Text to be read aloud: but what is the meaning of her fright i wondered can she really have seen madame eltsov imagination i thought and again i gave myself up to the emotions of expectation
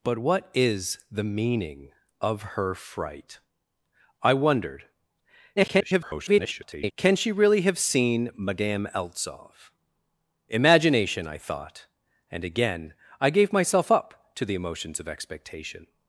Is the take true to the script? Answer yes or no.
no